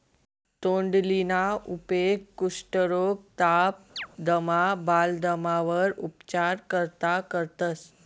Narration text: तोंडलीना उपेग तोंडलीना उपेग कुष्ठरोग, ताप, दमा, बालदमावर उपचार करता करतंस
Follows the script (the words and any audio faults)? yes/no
no